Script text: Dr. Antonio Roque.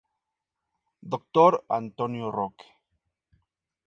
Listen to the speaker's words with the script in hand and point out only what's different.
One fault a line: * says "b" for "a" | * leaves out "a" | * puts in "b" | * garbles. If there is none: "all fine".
all fine